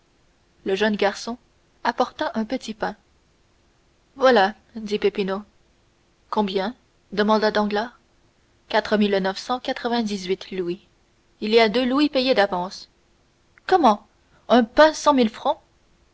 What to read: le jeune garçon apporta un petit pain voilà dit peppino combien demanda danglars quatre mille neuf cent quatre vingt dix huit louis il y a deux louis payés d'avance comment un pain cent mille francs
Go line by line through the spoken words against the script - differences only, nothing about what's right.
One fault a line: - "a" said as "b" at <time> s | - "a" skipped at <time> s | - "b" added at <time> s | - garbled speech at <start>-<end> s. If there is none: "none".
none